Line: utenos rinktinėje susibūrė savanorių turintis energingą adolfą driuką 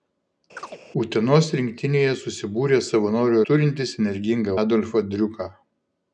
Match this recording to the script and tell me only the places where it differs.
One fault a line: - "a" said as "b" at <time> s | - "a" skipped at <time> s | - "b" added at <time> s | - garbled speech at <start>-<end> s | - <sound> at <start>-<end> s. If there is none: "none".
- chirp at 0.6-0.8 s